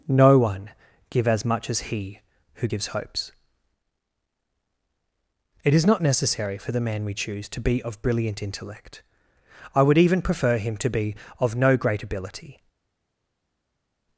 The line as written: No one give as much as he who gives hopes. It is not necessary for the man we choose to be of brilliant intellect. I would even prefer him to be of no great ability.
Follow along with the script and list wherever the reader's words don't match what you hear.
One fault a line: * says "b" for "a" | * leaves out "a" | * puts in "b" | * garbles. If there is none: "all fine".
all fine